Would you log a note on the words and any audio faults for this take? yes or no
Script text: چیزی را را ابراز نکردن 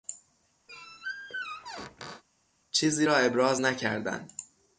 yes